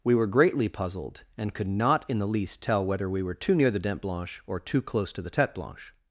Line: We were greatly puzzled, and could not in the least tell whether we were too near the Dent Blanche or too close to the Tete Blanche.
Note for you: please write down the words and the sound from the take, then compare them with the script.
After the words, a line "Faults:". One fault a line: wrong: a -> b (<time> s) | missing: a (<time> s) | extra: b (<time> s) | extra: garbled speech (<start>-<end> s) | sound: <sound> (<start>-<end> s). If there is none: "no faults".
We were greatly puzzled, and could not in the least tell whether we were too near the Dent Blanche or too close to the Tete Blanche.
Faults:
no faults